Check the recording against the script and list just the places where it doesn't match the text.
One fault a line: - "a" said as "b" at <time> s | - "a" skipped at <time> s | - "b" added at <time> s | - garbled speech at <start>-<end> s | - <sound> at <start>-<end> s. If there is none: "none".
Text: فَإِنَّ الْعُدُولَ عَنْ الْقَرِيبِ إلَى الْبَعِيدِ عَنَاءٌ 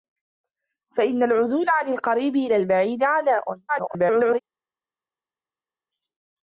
- garbled speech at 3.7-4.4 s